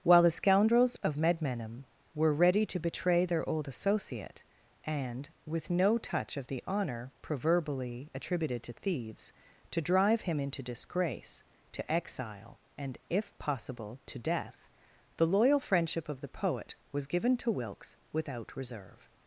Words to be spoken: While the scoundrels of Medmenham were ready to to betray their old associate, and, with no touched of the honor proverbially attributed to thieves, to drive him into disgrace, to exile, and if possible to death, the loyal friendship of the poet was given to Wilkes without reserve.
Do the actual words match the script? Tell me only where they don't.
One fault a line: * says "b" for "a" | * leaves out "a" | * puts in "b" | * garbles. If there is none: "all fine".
* leaves out "to"
* says "touch" for "touched"